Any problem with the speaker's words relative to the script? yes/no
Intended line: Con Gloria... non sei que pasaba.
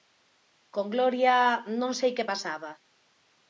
no